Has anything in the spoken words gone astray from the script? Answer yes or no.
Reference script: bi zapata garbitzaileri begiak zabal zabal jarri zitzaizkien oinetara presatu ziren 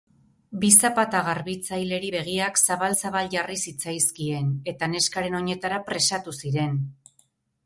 yes